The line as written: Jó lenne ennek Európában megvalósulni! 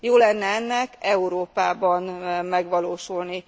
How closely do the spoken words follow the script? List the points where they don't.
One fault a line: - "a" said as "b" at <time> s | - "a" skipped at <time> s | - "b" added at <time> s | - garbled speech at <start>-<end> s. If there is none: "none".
none